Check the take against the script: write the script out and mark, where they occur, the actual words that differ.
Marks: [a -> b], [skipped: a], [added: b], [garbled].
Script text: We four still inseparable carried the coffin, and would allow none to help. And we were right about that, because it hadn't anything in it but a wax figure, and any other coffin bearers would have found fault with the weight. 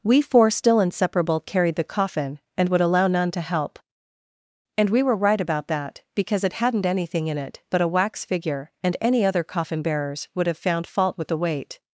We four still inseparable carried the coffin, and would allow none to help. And we were right about that, because it hadn't anything in it but a wax figure, and any other coffin bearers would have found fault with the weight.